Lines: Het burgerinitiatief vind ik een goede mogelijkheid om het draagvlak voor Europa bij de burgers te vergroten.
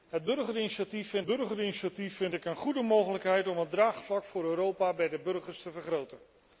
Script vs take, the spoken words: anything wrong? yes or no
yes